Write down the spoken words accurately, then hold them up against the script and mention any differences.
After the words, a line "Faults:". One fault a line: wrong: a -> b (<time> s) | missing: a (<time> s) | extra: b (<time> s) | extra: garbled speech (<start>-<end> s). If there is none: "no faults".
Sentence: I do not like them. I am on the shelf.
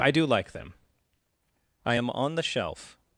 I do like them. I am on the shelf.
Faults:
missing: not (0.2 s)